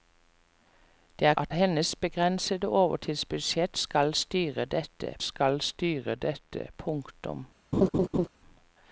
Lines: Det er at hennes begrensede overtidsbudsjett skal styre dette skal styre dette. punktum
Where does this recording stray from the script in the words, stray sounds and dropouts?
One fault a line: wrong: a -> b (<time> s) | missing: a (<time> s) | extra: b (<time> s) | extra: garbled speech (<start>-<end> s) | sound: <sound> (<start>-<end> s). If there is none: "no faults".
sound: laugh (7.7-8.3 s)